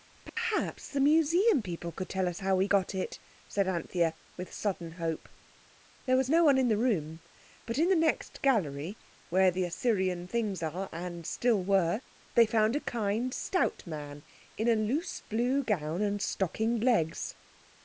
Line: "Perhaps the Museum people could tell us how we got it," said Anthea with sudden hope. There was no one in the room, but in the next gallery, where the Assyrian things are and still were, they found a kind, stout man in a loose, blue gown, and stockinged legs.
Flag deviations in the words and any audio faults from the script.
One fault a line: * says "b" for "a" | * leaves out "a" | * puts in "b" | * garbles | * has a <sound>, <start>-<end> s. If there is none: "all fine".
* has a dropout, 0.3-0.4 s